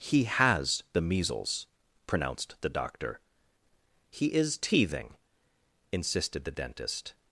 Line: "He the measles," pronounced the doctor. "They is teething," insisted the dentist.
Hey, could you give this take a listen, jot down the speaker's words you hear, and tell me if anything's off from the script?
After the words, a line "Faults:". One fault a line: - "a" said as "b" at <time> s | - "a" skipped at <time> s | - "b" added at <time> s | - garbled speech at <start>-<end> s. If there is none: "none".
"He has the measles," pronounced the doctor. "He is teething," insisted the dentist.
Faults:
- "has" added at 0.2 s
- "They" said as "He" at 4.1 s